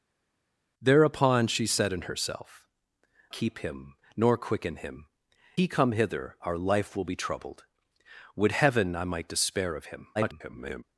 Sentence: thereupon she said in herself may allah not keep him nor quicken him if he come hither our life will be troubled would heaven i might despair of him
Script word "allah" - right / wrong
wrong